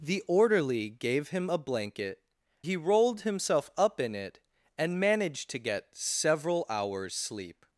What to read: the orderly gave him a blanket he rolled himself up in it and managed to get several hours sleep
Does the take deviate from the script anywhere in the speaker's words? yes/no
no